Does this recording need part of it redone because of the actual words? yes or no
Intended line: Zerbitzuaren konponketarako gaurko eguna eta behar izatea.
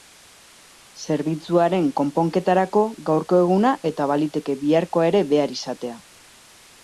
yes